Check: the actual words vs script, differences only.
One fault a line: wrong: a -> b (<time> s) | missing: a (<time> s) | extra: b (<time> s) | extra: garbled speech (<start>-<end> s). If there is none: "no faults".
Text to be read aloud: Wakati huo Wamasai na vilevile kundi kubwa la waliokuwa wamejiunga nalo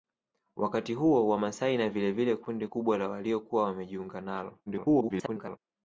extra: garbled speech (4.7-5.6 s)